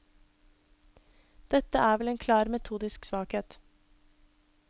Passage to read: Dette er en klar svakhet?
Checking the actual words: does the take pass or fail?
fail